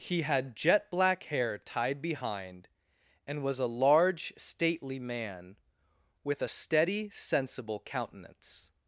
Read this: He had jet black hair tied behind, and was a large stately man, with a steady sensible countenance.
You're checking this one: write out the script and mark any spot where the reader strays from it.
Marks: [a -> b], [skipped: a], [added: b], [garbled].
He had jet black hair tied behind, and was a large stately man, with a steady sensible countenance.